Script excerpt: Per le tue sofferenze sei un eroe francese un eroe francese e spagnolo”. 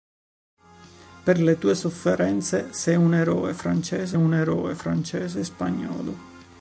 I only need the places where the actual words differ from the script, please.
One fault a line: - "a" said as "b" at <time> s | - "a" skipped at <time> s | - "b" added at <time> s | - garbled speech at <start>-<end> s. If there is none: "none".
none